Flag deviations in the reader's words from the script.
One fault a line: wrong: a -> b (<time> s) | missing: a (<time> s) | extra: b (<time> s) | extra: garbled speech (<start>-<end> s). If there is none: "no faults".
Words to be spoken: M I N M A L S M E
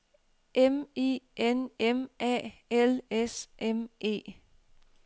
no faults